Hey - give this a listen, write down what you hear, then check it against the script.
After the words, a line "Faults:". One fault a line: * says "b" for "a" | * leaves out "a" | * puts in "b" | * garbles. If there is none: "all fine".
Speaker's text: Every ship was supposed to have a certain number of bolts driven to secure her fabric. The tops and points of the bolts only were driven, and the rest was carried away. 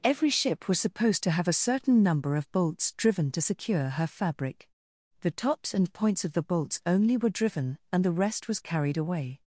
Every ship was supposed to have a certain number of bolts driven to secure her fabric. The tops and points of the bolts only were driven, and the rest was carried away.
Faults:
all fine